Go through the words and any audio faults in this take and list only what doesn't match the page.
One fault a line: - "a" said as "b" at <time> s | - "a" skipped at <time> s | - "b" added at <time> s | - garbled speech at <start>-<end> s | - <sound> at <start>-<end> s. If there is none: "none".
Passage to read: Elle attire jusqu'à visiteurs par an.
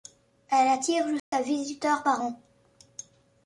- dropout at 1.2-1.3 s